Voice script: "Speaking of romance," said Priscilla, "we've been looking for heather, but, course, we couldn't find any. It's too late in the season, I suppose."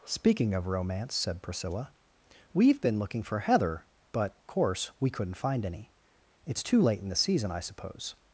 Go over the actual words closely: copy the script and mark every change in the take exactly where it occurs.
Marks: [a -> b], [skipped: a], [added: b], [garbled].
"Speaking of romance," said Priscilla, "we've been looking for heather, but, course, we couldn't find any. It's too late in the season, I suppose."